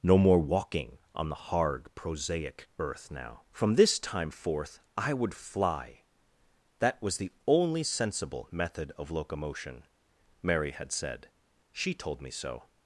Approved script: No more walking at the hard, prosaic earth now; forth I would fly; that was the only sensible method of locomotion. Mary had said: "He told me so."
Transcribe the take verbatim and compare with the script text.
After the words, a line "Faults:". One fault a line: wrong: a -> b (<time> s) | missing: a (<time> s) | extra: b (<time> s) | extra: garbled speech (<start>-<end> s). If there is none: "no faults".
No more walking on the hard, prosaic earth now; from this time forth I would fly; that was the only sensible method of locomotion. Mary had said: "She told me so."
Faults:
wrong: at -> on (1.1 s)
extra: from this time (3.5 s)
wrong: He -> She (11.7 s)